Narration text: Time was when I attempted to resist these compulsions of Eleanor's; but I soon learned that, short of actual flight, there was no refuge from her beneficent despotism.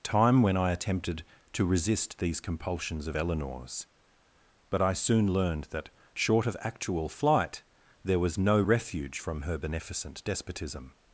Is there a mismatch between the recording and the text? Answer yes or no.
yes